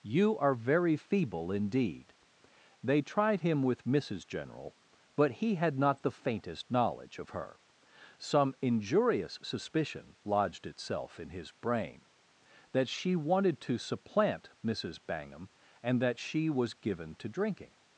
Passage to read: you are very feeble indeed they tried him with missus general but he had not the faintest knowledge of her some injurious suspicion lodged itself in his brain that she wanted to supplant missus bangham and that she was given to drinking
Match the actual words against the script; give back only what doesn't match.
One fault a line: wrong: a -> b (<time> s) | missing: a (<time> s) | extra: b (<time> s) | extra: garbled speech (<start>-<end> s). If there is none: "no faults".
no faults